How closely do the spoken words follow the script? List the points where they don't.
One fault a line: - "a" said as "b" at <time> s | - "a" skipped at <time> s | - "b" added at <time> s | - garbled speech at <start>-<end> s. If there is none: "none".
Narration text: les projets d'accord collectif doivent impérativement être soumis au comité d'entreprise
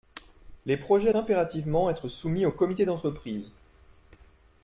- "d'accord collectif doivent" skipped at 1.1 s